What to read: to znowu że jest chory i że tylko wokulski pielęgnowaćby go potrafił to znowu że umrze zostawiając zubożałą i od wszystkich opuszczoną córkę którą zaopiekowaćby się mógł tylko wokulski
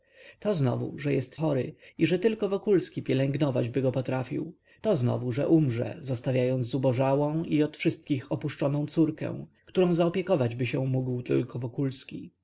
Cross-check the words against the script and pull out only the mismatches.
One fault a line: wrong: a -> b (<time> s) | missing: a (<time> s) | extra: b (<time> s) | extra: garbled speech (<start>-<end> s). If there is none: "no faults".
no faults